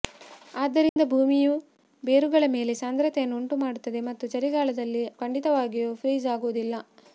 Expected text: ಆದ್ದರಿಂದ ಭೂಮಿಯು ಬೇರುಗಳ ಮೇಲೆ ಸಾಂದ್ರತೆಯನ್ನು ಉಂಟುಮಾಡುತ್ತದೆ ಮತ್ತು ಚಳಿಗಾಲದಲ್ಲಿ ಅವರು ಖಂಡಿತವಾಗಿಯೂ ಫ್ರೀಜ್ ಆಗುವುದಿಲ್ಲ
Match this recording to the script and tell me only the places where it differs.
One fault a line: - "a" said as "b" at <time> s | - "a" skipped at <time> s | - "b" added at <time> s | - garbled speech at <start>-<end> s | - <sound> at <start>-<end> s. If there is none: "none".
- dropout at 0.9-1.0 s
- "ಅವರು" skipped at 5.0 s